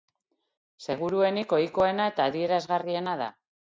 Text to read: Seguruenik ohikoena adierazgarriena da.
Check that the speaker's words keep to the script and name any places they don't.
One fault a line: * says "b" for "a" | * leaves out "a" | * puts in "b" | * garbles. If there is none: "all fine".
* puts in "eta"